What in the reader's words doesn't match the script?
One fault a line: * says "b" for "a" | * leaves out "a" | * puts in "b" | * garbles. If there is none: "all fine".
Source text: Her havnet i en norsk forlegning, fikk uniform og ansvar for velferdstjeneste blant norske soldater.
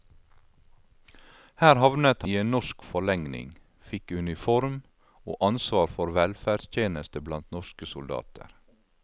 all fine